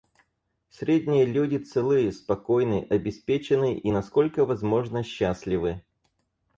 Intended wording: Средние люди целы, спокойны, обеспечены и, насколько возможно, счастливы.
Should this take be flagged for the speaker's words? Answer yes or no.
no